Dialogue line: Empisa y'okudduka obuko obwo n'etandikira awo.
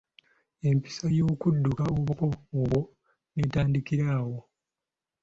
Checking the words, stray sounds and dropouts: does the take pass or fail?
pass